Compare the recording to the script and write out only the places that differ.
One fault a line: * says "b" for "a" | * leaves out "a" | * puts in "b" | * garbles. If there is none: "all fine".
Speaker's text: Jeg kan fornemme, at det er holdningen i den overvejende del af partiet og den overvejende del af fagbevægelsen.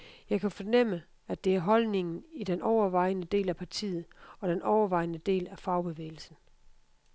all fine